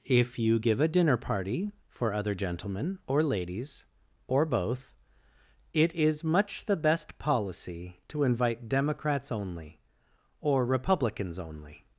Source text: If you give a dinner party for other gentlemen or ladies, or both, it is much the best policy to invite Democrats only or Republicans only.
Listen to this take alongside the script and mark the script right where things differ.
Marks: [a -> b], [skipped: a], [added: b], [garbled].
If you give a dinner party for other gentlemen or ladies, or both, it is much the best policy to invite Democrats only or Republicans only.